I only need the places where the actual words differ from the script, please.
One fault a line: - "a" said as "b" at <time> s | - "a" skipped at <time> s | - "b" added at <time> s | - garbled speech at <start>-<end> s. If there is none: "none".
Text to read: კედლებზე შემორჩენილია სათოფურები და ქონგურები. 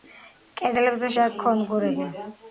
- "შემორჩენილია სათოფურები" skipped at 1.1 s